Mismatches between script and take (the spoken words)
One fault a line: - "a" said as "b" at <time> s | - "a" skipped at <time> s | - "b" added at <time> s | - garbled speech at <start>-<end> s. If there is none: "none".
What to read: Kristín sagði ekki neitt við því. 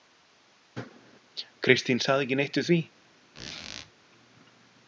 none